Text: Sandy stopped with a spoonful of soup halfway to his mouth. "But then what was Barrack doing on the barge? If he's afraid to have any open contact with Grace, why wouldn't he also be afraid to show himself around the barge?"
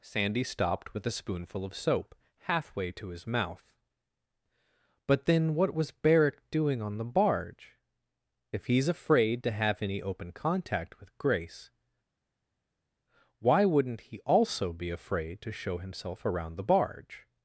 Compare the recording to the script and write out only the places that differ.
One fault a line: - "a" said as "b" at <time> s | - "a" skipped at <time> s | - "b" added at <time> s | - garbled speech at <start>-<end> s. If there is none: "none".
- "soup" said as "soap" at 1.8 s